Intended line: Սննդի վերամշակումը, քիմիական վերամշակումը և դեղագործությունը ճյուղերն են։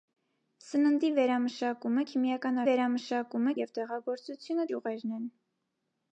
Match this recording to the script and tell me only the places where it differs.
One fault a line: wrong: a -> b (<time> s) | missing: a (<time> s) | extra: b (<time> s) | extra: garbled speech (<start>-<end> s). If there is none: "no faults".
no faults